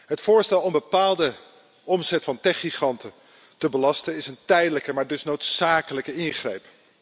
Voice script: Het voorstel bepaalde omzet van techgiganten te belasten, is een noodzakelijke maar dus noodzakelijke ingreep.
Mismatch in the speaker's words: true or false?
true